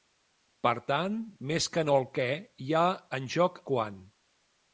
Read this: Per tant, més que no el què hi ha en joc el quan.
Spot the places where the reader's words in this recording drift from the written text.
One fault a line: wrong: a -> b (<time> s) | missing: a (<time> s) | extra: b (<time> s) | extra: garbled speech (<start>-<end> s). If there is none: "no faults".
missing: el (3.6 s)